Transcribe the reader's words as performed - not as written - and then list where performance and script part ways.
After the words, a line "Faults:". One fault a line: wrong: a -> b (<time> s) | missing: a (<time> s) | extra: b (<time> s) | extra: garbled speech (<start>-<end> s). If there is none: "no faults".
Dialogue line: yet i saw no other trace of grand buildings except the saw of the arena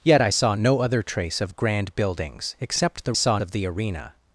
yet i saw no other trace of grand buildings except the saw of the arena
Faults:
no faults